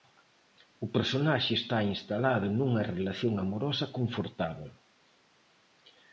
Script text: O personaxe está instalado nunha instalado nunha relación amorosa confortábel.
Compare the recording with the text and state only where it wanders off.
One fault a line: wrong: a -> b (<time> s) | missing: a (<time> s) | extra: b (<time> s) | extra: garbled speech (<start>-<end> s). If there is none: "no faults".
missing: instalado nunha (2.9 s)